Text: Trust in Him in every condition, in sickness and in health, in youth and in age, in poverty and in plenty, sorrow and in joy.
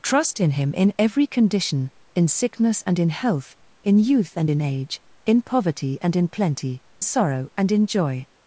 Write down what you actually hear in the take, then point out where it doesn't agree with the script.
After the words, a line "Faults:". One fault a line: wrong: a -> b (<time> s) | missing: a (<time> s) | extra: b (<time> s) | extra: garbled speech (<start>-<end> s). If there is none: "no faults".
Trust in Him in every condition, in sickness and in health, in youth and in age, in poverty and in plenty, sorrow and in joy.
Faults:
no faults